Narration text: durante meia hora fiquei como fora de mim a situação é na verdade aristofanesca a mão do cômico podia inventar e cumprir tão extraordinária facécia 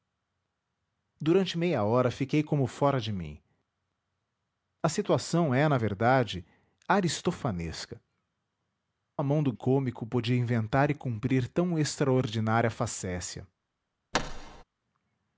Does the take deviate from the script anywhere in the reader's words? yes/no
no